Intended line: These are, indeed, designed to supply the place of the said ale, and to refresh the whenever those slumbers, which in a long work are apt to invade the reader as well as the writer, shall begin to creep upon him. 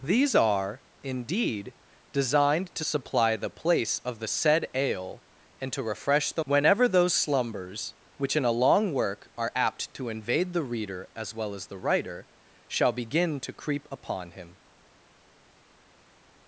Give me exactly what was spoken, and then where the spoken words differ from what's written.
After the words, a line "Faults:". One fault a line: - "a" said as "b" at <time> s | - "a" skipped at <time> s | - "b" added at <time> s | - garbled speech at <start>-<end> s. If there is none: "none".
These are, indeed, designed to supply the place of the said ale, and to refresh the whenever those slumbers, which in a long work are apt to invade the reader as well as the writer, shall begin to creep upon him.
Faults:
none